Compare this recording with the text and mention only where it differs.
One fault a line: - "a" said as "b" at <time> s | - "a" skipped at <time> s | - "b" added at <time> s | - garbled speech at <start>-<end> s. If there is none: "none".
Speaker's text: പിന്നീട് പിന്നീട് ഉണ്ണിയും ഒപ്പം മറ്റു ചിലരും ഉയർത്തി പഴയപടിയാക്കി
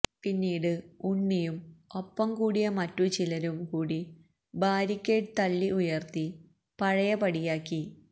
- "പിന്നീട്" skipped at 0.7 s
- "കൂടിയ" added at 2.4 s
- "കൂടി ബാരിക്കേഡ് തള്ളി" added at 3.6 s